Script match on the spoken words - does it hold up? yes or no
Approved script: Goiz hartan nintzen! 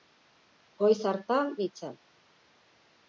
yes